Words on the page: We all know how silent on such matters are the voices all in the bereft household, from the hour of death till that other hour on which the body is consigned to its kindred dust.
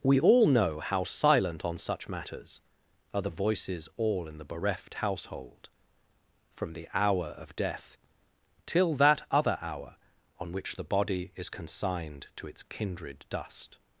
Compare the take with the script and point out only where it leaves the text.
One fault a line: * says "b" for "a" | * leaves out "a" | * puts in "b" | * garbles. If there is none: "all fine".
all fine